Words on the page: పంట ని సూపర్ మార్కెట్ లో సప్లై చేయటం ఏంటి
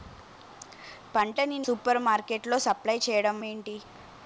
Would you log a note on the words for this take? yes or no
no